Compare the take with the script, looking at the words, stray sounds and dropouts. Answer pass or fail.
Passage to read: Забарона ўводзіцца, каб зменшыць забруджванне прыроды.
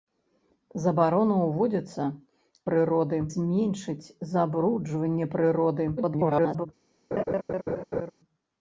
fail